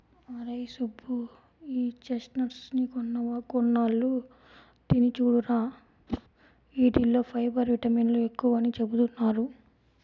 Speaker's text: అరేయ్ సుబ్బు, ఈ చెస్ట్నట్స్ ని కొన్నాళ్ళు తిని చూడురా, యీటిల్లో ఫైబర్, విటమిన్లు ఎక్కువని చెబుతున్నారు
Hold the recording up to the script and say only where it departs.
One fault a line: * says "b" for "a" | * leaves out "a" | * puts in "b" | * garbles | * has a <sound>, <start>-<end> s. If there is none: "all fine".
* has a whoosh, 6.1-6.2 s